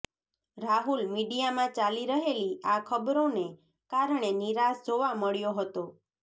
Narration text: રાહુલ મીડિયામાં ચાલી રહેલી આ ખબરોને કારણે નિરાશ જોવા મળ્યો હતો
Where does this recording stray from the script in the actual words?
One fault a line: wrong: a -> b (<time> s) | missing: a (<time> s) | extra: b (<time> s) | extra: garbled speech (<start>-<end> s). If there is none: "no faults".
no faults